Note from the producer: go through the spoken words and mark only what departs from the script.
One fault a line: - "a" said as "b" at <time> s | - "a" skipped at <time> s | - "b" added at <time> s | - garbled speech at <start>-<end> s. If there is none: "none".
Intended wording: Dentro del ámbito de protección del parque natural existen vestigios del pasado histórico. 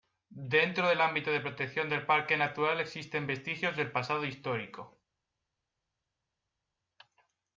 none